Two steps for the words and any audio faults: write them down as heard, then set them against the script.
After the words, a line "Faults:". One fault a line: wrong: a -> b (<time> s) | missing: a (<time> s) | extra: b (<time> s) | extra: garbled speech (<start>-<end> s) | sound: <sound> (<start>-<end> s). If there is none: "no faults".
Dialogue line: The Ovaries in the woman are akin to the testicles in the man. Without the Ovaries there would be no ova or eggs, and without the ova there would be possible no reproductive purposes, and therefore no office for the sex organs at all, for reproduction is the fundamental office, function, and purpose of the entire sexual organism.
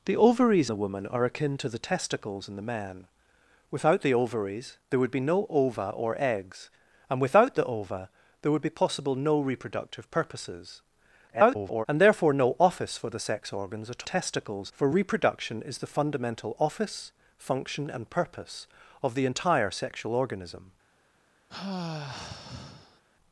The Ovaries the woman are akin to the testicles in the man. Without the Ovaries there would be no ova or eggs, and without the ova there would be possible no reproductive purposes, [garbled] and therefore no office for the sex organs at testicles, for reproduction is the fundamental office, function, and purpose of the entire sexual organism.
Faults:
missing: in (0.7 s)
extra: garbled speech (11.3-11.9 s)
wrong: all -> testicles (14.0 s)
sound: sigh (21.5-23.0 s)